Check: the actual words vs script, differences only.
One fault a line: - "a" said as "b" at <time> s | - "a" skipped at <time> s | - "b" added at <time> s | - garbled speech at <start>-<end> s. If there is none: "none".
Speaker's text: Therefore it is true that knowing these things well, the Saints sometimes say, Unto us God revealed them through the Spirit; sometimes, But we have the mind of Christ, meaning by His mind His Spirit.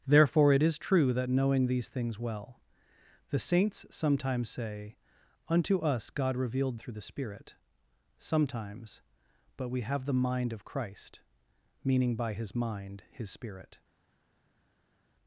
- "them" skipped at 6.8 s